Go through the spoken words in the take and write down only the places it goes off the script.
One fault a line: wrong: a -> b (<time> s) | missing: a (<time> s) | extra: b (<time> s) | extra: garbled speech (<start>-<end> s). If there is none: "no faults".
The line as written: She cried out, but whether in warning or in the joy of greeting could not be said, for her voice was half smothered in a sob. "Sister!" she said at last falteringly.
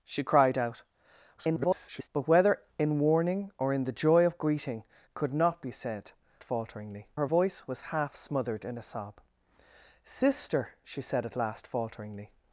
extra: garbled speech (1.4-2.1 s)
wrong: for -> falteringly (6.4 s)